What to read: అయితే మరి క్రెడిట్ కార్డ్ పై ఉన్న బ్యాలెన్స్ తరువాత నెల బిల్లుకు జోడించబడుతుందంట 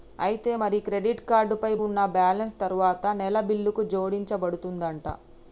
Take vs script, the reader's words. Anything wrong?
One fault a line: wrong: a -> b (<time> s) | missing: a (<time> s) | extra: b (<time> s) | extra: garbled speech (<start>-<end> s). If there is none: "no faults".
no faults